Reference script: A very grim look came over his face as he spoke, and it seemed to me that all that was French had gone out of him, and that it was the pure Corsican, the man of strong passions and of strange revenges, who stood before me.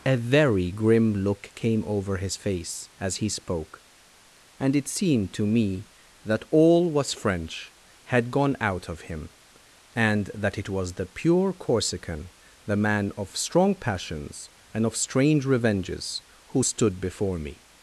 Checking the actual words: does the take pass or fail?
fail